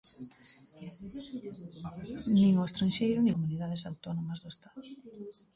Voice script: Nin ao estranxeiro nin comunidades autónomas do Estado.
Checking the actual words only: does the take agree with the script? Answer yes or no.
yes